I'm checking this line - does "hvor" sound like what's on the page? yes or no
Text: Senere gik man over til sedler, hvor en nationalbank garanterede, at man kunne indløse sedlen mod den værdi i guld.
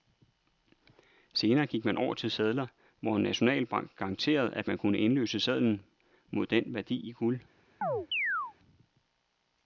yes